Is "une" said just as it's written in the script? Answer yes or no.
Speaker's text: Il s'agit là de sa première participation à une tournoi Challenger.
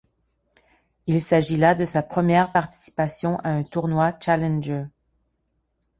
no